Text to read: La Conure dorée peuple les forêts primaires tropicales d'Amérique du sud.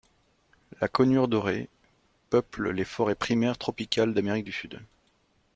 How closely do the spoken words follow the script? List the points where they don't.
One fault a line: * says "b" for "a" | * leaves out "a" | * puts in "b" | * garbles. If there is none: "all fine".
all fine